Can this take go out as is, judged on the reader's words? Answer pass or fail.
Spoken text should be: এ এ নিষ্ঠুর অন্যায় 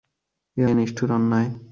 pass